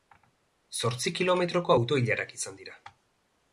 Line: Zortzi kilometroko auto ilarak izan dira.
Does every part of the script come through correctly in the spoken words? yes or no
yes